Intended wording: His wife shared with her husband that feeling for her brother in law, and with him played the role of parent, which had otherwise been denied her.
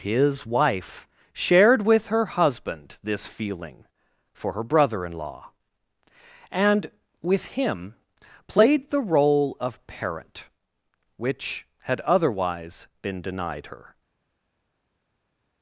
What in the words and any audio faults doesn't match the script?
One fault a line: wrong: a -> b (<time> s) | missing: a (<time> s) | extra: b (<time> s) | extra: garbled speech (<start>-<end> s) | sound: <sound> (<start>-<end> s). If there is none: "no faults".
wrong: that -> this (3.0 s)